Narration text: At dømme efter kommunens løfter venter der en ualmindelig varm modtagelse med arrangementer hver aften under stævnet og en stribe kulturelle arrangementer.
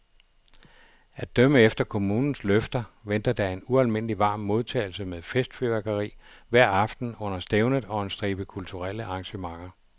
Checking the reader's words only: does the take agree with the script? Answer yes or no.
no